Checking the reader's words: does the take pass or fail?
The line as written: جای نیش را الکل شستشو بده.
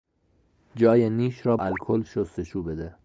pass